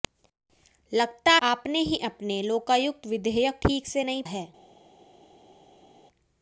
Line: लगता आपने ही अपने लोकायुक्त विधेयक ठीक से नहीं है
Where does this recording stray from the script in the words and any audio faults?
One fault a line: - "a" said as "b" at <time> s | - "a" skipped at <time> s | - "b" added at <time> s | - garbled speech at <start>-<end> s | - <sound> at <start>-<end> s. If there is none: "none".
none